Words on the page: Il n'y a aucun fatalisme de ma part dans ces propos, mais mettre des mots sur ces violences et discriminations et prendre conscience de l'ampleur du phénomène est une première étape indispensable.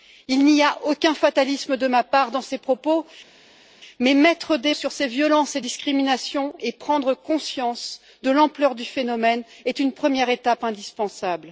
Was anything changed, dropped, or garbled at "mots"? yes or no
yes